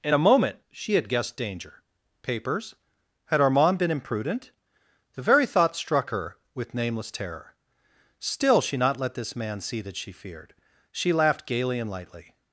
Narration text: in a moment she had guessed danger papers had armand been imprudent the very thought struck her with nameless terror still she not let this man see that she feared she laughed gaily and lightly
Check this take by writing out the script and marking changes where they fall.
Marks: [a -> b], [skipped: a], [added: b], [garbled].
in a moment she had guessed danger papers had armand been imprudent the very thought struck her with nameless terror still she not let this man see that she feared she laughed gaily and lightly